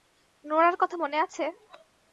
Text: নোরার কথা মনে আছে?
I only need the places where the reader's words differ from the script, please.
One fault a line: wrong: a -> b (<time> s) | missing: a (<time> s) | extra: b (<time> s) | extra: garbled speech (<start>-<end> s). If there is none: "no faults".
no faults